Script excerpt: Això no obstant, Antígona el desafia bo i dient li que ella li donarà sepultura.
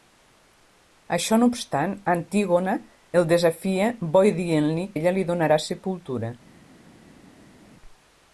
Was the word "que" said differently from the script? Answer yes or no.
yes